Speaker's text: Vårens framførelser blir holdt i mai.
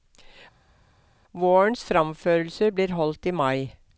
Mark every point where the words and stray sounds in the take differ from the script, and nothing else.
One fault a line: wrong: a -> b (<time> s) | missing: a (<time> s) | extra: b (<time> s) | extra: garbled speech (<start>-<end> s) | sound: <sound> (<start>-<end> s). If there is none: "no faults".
no faults